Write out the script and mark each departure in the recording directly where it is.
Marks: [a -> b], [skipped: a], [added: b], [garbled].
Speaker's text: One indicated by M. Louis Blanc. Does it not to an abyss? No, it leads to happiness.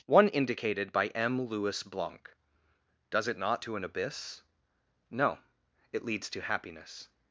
One indicated by M. Louis Blanc. Does it not to an abyss? No, it leads to happiness.